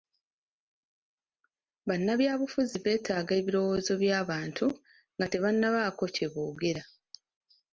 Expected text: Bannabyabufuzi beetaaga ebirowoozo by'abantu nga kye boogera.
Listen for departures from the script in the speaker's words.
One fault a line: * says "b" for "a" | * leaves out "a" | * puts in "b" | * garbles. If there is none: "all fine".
* puts in "tebannabaako"